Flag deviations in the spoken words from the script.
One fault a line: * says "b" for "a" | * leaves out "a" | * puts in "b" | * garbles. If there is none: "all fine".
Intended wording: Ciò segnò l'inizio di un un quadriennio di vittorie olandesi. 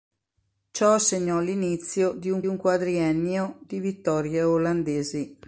all fine